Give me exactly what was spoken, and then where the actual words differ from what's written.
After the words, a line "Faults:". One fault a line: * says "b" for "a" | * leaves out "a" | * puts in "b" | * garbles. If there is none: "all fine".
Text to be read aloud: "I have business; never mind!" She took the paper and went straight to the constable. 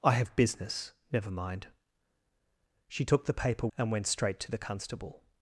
"I have business; never mind!" She took the paper and went straight to the constable.
Faults:
all fine